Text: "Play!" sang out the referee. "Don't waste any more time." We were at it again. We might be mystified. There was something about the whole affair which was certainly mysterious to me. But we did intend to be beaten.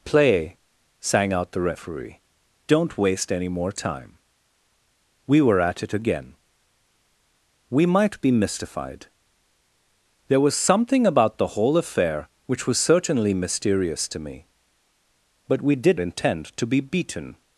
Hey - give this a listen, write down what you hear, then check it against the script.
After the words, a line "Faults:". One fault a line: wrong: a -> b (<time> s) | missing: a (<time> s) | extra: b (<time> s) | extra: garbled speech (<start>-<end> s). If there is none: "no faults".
"Play!" sang out the referee. "Don't waste any more time." We were at it again. We might be mystified. There was something about the whole affair which was certainly mysterious to me. But we did intend to be beaten.
Faults:
no faults